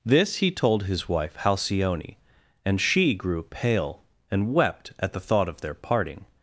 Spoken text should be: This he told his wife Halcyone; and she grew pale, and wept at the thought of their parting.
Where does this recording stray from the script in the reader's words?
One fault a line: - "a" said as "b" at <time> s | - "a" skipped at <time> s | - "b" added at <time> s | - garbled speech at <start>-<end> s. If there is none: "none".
none